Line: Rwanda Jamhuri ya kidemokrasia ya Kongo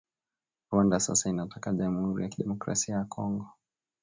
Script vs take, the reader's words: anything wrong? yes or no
yes